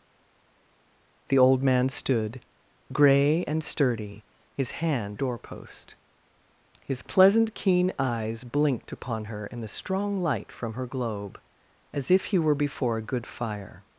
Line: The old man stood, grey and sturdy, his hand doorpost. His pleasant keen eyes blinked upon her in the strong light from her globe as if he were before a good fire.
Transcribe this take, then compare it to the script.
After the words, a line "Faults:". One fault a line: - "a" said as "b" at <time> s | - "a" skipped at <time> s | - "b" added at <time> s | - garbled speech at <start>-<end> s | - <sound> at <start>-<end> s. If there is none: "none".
The old man stood, grey and sturdy, his hand doorpost. His pleasant keen eyes blinked upon her in the strong light from her globe as if he were before a good fire.
Faults:
none